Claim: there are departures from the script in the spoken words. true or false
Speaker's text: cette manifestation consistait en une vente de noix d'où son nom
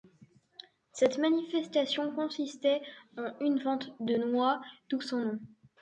false